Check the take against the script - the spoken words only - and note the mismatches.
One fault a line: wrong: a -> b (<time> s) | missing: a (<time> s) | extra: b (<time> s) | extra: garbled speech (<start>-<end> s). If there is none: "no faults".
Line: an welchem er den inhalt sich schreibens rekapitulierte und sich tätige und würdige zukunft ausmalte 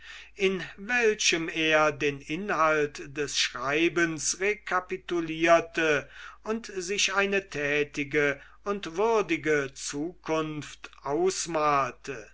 wrong: an -> in (0.3 s)
wrong: sich -> des (3.2 s)
extra: eine (7.1 s)